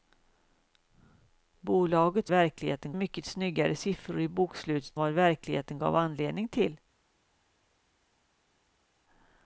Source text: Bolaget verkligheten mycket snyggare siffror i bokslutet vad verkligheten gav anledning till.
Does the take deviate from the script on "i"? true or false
false